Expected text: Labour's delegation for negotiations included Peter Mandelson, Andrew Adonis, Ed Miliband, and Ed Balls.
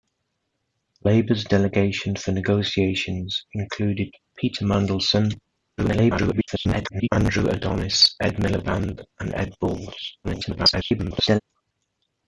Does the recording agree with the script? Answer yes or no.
no